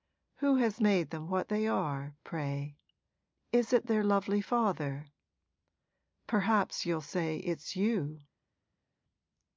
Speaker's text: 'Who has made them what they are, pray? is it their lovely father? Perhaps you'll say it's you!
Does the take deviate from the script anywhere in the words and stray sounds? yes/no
no